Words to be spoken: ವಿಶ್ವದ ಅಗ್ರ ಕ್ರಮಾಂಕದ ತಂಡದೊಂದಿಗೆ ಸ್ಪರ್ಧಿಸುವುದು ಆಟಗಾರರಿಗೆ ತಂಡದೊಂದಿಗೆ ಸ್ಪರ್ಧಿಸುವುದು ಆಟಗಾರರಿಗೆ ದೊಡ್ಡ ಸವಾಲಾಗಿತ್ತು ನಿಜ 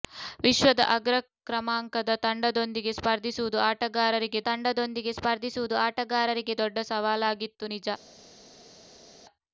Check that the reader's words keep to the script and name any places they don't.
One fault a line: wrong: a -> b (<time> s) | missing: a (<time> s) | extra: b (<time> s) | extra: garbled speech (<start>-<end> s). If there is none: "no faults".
no faults